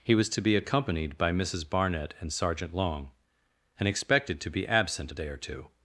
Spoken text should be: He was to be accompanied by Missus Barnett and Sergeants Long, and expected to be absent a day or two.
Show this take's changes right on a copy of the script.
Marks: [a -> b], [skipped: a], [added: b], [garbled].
He was to be accompanied by Missus Barnett and [Sergeants -> Sergeant] Long, and expected to be absent a day or two.